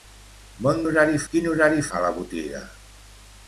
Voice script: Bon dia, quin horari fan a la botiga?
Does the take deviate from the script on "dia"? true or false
true